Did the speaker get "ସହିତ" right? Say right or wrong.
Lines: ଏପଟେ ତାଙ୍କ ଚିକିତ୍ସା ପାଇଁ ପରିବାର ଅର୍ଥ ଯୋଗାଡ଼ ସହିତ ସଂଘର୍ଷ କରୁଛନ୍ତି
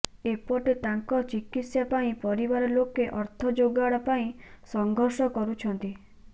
wrong